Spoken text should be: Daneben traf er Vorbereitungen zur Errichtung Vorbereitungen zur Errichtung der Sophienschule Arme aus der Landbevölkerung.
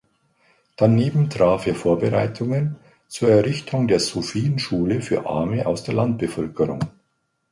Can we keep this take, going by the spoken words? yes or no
no